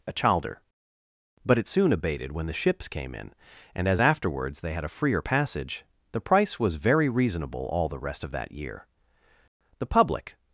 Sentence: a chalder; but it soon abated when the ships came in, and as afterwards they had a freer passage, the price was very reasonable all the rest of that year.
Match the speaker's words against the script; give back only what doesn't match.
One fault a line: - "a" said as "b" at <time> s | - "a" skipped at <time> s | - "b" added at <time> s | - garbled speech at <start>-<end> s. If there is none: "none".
- "The public" added at 9.8 s